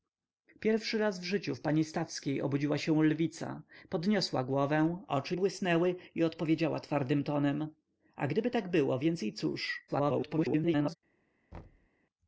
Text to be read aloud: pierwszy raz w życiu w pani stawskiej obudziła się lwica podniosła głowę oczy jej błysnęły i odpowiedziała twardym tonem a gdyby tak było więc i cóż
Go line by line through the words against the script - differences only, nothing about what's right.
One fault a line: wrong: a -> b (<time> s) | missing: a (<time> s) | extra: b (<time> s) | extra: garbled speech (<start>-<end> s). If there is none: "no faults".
missing: jej (5.4 s)
extra: garbled speech (9.9-11.0 s)